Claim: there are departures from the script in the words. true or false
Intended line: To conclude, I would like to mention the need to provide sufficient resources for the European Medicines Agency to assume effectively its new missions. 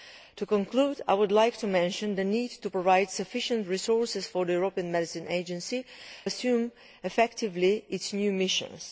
true